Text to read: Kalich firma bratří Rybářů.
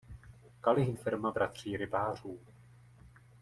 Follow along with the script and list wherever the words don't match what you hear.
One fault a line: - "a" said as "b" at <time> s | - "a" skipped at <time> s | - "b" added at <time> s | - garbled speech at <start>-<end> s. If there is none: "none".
none